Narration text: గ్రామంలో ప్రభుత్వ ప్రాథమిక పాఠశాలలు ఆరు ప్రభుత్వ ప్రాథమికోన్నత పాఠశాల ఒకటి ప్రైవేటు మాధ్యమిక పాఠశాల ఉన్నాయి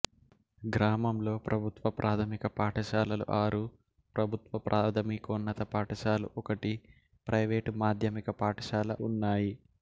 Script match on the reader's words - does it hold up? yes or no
yes